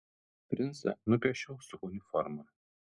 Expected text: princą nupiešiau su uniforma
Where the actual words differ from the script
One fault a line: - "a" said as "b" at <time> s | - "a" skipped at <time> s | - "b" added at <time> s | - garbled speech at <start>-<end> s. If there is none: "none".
none